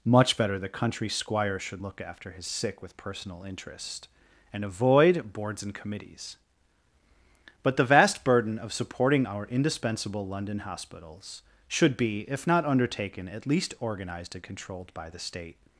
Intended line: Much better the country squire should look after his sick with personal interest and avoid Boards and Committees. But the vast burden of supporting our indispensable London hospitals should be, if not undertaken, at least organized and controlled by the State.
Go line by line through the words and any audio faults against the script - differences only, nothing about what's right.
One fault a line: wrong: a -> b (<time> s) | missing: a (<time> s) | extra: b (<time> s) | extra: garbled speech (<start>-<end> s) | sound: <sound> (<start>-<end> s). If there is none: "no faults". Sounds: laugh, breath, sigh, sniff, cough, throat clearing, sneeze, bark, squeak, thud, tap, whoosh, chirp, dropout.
no faults